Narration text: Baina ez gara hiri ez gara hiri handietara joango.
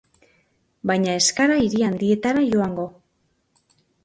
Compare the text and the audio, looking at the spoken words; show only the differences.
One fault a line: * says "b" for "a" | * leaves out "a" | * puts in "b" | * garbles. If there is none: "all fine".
* leaves out "ez gara hiri"